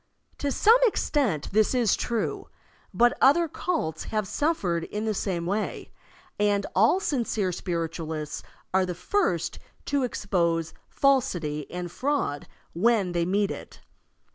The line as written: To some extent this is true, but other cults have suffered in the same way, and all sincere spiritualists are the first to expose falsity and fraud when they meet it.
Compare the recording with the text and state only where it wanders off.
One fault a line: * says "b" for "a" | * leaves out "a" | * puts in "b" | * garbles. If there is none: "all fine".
all fine